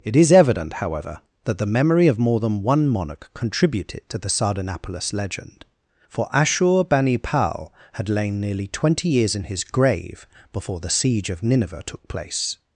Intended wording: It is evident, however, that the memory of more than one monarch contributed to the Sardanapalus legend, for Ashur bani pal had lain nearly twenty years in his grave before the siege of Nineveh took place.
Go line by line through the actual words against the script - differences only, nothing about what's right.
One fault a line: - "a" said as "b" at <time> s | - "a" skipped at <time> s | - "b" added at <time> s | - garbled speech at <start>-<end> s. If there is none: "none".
none